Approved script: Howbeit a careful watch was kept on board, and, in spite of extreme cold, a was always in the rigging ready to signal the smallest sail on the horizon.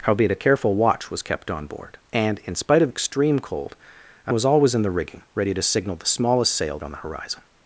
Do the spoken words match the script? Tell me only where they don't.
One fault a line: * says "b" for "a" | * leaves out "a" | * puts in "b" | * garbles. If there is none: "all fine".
all fine